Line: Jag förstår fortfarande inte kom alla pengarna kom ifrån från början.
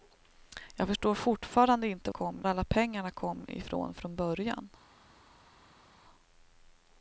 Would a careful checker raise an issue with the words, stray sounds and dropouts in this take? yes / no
no